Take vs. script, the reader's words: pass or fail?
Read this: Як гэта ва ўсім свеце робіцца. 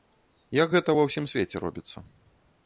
pass